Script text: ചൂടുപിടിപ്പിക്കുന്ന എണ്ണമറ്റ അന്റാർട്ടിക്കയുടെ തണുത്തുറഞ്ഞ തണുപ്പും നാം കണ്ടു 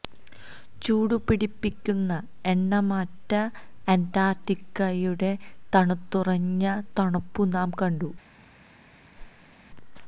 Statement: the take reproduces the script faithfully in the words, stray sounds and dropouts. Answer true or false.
false